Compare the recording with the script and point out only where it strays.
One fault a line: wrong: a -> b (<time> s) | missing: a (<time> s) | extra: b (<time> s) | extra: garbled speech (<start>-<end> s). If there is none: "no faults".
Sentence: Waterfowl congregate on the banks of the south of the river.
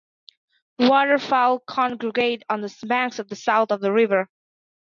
no faults